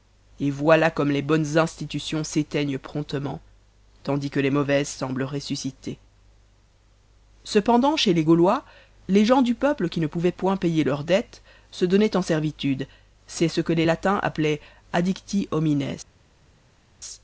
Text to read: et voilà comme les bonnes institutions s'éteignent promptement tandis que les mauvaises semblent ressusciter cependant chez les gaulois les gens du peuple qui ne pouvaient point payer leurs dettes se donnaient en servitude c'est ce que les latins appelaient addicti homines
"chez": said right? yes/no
yes